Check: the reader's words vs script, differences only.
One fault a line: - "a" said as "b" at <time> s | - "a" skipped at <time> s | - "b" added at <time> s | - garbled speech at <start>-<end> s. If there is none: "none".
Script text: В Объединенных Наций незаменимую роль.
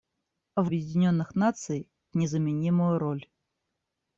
none